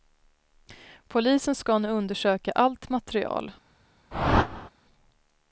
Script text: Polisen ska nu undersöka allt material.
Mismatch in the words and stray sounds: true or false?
true